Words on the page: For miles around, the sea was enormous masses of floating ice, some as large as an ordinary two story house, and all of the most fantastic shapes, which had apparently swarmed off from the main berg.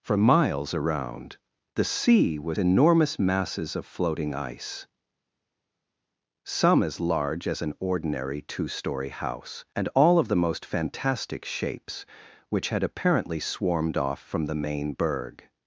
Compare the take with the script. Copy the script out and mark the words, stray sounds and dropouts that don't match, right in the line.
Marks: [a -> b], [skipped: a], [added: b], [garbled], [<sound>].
For miles around, the sea was enormous masses of floating ice, some as large as an ordinary two story house, and all of the most fantastic shapes, which had apparently swarmed off from the main berg.